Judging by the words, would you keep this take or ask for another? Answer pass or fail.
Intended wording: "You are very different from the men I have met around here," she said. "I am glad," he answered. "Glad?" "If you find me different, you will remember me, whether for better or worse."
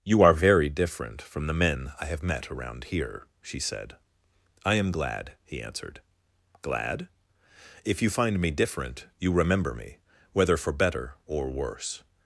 fail